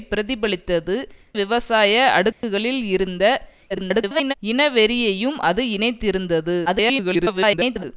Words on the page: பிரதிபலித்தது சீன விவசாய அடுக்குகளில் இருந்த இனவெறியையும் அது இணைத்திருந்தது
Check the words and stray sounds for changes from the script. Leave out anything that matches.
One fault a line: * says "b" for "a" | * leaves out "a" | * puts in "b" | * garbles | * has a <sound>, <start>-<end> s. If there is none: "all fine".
* leaves out "சீன"
* has a dropout, 2.3-2.4 s
* garbles
* garbles